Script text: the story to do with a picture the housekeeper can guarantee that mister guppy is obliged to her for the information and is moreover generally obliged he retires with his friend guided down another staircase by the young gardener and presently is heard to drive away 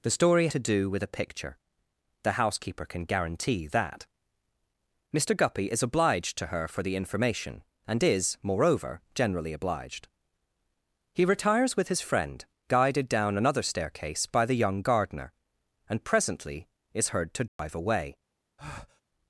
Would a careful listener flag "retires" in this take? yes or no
no